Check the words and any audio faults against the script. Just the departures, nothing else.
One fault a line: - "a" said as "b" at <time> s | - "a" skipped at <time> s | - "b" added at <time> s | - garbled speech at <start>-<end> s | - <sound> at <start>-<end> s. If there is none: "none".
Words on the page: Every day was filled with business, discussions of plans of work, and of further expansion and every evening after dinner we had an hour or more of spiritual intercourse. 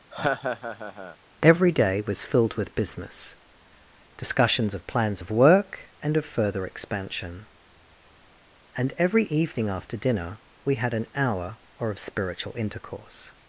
- laugh at 0.1-1.2 s
- "more" skipped at 11.9 s